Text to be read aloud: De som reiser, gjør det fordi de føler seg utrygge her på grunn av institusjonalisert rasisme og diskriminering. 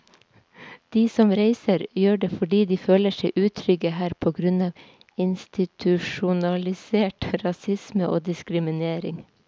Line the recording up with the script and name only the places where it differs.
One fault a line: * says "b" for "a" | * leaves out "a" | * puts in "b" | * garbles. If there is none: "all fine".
all fine